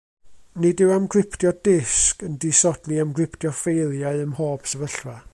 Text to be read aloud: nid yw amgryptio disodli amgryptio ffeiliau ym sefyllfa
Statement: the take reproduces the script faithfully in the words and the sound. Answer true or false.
false